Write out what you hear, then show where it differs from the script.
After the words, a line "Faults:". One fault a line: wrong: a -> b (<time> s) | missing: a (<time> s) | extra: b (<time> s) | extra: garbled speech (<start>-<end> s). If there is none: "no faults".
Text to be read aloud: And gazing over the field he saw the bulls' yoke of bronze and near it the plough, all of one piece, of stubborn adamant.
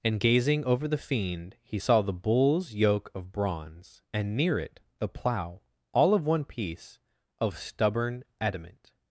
And gazing over the fiend he saw the bulls' yoke of bronze and near it the plough, all of one piece, of stubborn adamant.
Faults:
wrong: field -> fiend (1.0 s)